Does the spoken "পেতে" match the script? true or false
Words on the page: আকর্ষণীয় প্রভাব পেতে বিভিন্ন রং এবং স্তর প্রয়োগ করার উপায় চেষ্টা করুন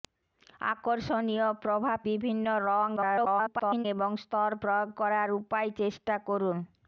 false